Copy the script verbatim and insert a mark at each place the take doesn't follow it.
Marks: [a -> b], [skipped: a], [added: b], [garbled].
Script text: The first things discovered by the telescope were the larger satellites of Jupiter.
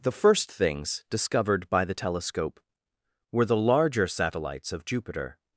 The first things discovered by the telescope were the larger satellites of Jupiter.